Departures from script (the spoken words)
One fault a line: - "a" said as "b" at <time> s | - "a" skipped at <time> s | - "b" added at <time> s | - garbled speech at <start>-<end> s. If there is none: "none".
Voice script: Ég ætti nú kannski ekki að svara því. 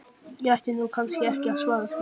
none